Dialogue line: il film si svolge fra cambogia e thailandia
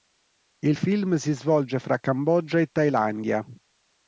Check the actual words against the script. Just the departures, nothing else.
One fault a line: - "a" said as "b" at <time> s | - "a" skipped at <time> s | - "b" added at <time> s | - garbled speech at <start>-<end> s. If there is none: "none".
none